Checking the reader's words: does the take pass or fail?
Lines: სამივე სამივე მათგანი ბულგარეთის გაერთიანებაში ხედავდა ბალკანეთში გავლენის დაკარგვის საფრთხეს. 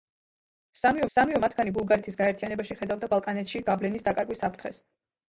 pass